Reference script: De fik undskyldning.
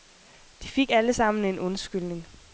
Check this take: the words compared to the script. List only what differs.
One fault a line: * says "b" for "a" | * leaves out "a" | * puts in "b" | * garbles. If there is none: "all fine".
* puts in "alle sammen en"